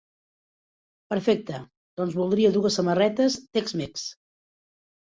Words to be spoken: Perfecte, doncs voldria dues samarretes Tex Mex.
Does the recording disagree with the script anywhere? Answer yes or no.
no